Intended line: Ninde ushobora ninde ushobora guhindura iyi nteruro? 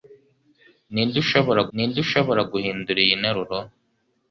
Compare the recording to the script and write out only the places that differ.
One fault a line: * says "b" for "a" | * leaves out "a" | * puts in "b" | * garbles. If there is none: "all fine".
all fine